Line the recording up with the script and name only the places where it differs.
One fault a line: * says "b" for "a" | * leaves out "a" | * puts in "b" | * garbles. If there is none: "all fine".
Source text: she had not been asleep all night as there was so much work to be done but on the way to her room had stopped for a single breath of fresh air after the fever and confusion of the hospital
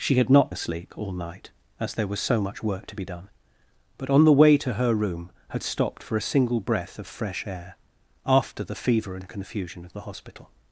* leaves out "been"